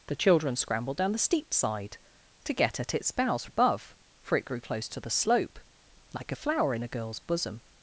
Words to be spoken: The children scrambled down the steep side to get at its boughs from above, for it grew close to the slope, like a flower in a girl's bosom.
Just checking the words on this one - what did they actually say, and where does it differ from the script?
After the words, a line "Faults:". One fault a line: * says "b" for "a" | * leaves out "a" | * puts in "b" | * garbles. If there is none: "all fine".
The children scrambled down the steep side to get at its boughs above, for it grew close to the slope, like a flower in a girl's bosom.
Faults:
* leaves out "from"